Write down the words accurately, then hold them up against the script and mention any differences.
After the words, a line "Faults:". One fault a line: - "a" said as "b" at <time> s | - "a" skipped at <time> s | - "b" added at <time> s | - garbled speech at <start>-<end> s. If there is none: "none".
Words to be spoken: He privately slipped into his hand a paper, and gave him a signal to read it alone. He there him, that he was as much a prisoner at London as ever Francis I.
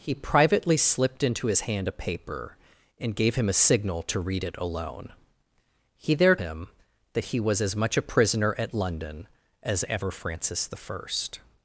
He privately slipped into his hand a paper, and gave him a signal to read it alone. He there him, that he was as much a prisoner at London as ever Francis I.
Faults:
none